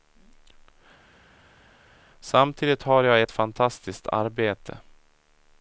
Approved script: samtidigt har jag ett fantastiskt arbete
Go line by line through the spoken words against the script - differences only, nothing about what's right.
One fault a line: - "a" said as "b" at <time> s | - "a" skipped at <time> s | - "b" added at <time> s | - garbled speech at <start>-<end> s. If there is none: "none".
none